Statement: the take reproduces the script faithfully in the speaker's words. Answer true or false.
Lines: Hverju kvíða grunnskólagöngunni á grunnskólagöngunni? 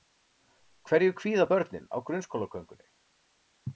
false